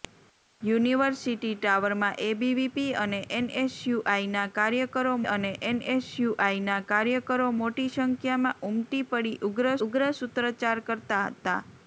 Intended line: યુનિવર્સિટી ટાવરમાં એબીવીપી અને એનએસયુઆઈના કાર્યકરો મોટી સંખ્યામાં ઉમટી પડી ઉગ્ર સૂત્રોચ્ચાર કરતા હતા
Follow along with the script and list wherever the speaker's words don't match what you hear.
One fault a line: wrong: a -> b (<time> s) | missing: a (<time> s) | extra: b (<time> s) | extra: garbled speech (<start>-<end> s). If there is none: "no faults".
extra: અને એનએસયુઆઈના કાર્યકરો (5.3 s)
extra: ઉગ્ર (9.9 s)